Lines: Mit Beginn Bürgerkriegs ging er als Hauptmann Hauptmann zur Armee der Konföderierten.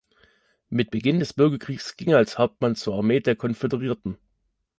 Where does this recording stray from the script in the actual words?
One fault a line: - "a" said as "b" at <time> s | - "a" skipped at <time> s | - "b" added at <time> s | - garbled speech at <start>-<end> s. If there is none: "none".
- "des" added at 1.2 s
- "Hauptmann" skipped at 2.7 s